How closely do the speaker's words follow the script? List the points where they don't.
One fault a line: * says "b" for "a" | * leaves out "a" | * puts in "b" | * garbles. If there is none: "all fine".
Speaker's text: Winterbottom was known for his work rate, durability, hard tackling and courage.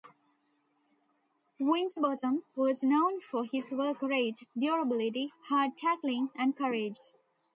all fine